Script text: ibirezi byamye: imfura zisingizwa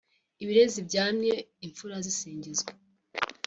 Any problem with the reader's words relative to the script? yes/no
no